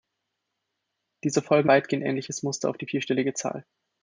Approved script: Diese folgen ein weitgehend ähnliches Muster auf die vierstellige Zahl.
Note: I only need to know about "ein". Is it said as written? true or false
false